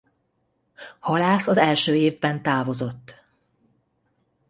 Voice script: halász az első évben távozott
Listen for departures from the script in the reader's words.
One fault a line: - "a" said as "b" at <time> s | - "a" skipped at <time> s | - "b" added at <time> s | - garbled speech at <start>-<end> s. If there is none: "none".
none